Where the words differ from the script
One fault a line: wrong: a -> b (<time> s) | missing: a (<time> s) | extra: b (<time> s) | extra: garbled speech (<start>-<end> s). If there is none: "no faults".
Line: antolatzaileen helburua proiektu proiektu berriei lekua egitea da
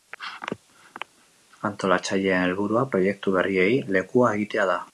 missing: proiektu (3.3 s)